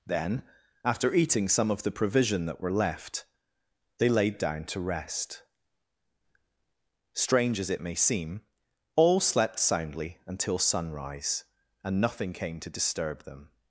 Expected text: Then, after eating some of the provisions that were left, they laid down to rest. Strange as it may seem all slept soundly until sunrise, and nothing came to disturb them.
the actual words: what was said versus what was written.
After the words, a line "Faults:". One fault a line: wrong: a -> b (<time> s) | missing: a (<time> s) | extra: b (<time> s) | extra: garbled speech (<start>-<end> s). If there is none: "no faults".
Then, after eating some of the provision that were left, they laid down to rest. Strange as it may seem all slept soundly until sunrise, and nothing came to disturb them.
Faults:
wrong: provisions -> provision (1.9 s)